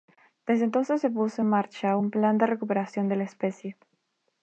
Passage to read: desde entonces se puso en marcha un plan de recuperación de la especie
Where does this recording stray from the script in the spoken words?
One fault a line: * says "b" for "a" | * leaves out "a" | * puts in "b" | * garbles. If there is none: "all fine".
all fine